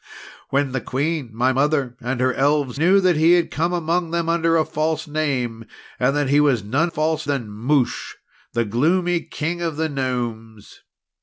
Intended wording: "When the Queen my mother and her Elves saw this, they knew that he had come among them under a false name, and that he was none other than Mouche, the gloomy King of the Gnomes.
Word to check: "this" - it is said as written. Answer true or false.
false